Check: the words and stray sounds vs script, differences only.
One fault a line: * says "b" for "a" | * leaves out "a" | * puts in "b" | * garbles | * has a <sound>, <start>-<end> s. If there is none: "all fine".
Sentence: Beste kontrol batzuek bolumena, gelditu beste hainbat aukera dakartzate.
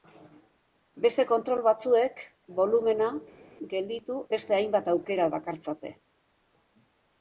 all fine